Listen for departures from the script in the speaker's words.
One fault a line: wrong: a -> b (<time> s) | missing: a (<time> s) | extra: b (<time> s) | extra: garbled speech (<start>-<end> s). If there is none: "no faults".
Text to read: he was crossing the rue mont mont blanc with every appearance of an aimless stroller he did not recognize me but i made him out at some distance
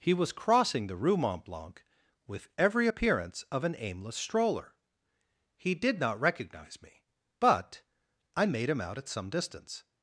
missing: mont (1.4 s)